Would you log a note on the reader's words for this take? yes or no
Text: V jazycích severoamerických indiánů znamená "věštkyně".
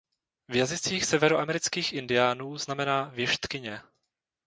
no